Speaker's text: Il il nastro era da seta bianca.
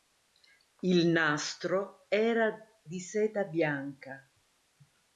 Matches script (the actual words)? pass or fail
fail